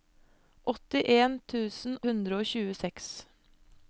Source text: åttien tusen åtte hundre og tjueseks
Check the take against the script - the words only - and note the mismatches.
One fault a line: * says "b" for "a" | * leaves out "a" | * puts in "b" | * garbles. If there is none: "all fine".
* leaves out "åtte"